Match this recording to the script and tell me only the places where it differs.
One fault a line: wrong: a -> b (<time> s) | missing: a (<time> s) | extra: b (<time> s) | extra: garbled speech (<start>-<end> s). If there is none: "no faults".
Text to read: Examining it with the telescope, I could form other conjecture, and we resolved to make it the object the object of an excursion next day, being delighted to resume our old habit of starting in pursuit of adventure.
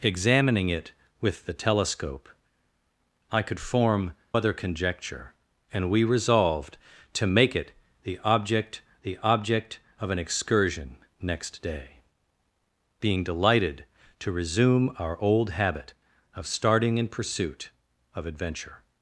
no faults